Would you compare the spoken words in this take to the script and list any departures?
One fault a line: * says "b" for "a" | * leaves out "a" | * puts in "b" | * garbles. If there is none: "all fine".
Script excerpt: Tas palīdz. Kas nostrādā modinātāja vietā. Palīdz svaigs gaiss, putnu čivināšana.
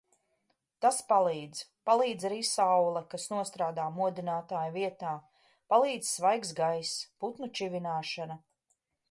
* puts in "Palīdz arī saule"